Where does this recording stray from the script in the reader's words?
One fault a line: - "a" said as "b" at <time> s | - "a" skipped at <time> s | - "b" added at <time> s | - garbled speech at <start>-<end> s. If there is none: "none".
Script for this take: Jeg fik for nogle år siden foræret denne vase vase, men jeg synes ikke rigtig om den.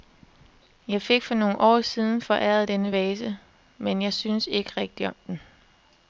- "vase" skipped at 3.4 s